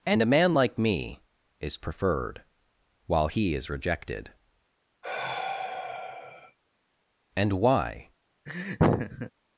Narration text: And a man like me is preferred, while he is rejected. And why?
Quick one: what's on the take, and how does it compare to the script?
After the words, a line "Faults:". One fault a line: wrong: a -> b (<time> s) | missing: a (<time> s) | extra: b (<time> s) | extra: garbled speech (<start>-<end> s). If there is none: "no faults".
And a man like me is preferred, while he is rejected. And why?
Faults:
no faults